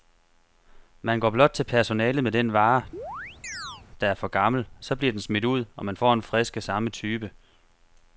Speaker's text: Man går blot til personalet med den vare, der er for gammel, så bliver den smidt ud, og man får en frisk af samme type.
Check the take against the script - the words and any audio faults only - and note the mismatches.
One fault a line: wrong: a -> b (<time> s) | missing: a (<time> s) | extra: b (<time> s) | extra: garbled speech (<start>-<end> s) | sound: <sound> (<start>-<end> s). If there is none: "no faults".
sound: chirp (2.9-3.8 s)